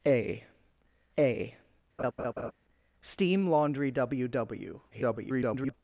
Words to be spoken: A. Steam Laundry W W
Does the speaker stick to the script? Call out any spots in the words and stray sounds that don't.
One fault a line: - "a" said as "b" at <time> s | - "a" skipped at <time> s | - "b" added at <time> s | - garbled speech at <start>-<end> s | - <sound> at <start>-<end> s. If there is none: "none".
- "a" added at 1.2 s
- laugh at 2.0-2.5 s
- garbled speech at 4.9-5.7 s